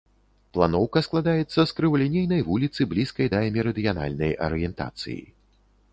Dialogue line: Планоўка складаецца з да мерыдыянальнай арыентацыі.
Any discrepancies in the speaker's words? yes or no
yes